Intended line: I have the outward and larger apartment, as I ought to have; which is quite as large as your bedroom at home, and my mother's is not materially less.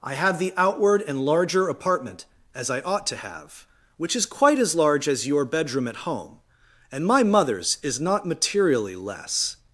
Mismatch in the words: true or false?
false